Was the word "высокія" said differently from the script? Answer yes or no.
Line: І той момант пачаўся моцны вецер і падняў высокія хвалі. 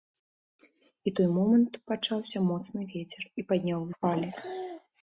yes